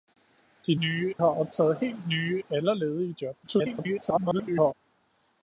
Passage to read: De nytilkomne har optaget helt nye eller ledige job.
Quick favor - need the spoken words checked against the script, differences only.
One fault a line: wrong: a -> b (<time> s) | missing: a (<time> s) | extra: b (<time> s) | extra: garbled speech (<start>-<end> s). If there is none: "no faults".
wrong: nytilkomne -> nye (0.8 s)
extra: garbled speech (3.4-4.7 s)